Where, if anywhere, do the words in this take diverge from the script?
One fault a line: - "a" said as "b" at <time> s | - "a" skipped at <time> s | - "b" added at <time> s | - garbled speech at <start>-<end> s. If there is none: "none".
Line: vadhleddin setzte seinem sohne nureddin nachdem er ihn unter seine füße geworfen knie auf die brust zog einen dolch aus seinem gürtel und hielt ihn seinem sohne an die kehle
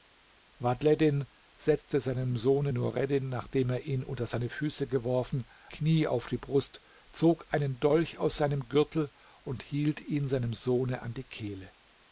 none